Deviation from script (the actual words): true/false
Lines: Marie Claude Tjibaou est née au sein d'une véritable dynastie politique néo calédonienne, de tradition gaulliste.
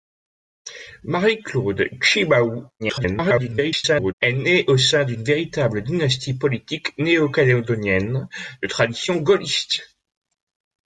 true